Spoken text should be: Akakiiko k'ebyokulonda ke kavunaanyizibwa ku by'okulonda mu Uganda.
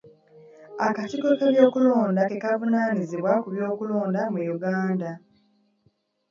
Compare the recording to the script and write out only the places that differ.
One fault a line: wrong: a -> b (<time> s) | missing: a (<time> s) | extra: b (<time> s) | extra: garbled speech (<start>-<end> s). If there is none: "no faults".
no faults